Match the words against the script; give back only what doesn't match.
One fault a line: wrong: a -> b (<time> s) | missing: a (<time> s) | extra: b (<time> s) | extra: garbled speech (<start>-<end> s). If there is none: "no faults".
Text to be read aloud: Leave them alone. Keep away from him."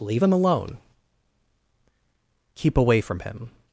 no faults